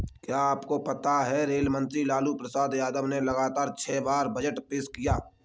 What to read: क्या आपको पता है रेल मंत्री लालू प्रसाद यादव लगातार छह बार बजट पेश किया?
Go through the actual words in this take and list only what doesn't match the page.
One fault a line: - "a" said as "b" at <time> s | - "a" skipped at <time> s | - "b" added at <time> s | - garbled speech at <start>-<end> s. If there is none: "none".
- "ने" added at 3.1 s